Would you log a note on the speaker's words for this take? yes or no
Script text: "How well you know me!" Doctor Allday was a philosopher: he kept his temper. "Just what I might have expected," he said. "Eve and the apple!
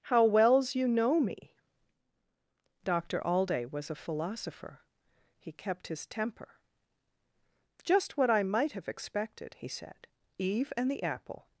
yes